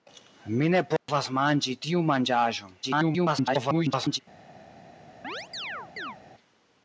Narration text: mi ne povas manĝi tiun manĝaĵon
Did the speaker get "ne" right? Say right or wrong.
right